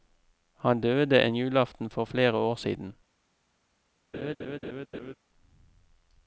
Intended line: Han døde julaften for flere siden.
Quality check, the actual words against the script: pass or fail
fail